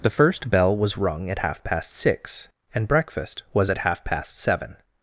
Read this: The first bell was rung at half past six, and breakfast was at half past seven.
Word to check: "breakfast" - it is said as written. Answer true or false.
true